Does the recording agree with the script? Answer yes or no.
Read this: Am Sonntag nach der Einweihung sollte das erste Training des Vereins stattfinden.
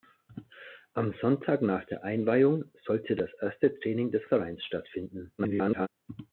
no